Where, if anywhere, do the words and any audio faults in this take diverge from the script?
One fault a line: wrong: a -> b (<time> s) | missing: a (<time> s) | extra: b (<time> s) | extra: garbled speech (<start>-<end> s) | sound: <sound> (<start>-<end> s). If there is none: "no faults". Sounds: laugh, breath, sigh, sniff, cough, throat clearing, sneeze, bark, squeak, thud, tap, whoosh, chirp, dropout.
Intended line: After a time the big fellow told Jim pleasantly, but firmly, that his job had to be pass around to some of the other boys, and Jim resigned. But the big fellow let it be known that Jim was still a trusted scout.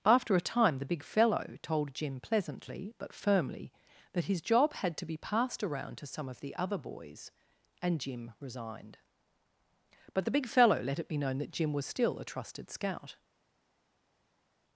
wrong: pass -> passed (5.2 s)